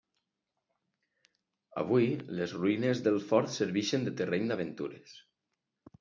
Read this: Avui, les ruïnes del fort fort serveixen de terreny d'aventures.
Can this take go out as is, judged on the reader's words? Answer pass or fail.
fail